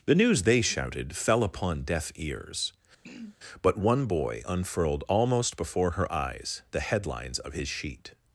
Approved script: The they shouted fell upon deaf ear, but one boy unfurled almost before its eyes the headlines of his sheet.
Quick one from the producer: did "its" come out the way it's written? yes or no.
no